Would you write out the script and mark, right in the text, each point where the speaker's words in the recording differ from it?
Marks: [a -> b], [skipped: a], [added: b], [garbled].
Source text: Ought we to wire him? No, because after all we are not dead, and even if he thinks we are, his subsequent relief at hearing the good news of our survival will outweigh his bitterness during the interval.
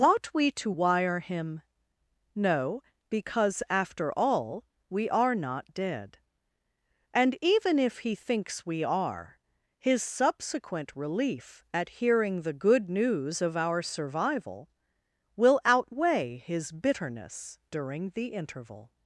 Ought we to wire him? No, because after all we are not dead, and even if he thinks we are, his subsequent relief at hearing the good news of our survival will outweigh his bitterness during the interval.